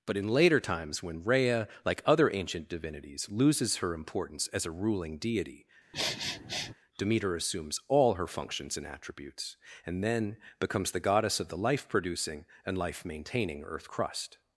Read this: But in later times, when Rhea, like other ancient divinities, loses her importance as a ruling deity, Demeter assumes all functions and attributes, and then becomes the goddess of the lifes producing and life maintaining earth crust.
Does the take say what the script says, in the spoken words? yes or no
no